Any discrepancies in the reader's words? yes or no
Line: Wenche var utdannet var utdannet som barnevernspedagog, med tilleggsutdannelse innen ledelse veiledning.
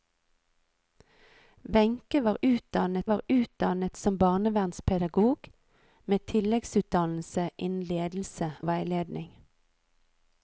no